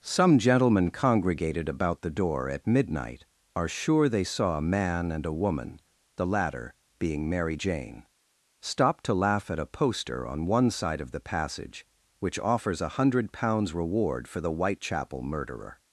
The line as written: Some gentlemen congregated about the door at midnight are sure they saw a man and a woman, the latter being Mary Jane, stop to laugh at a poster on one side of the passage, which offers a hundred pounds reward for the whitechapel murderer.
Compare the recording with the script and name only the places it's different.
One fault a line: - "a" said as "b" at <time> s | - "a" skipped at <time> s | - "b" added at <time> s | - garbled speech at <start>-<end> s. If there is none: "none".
none